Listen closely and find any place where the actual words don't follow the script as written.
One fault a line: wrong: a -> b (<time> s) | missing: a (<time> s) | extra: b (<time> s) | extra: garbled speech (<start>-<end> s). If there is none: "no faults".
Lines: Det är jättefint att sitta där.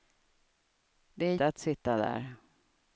missing: jättefint (1.4 s)